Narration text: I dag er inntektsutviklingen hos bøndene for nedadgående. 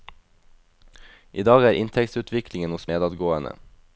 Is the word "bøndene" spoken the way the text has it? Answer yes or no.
no